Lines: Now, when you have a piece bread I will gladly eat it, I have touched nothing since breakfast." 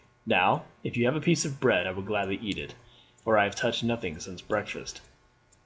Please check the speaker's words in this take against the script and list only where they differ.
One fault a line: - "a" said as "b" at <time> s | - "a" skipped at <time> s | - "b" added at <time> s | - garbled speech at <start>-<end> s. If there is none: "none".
- "when" said as "if" at 0.8 s
- "of" added at 1.4 s
- "for" added at 3.2 s